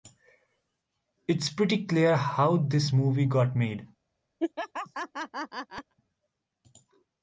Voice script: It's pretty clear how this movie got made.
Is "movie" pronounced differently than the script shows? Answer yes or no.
no